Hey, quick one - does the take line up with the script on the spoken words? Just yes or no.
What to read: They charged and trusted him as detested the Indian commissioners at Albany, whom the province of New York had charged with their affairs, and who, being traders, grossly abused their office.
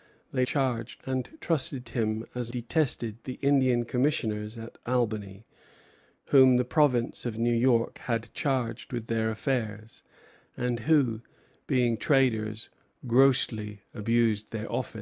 yes